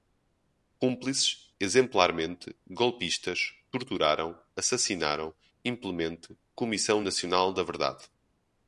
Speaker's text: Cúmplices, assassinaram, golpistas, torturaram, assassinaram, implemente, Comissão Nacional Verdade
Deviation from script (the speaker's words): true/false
true